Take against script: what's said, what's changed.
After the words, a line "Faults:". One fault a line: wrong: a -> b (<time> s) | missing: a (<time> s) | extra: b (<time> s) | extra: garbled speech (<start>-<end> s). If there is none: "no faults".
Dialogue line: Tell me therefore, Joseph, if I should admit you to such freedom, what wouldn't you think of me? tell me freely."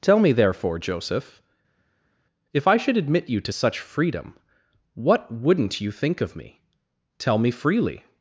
Tell me therefore, Joseph, if I should admit you to such freedom, what wouldn't you think of me? tell me freely."
Faults:
no faults